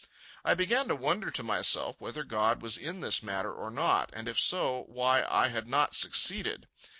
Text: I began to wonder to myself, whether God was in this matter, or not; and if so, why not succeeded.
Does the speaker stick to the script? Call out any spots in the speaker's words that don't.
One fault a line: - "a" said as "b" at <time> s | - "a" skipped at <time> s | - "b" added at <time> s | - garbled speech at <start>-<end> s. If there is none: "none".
- "I had" added at 5.3 s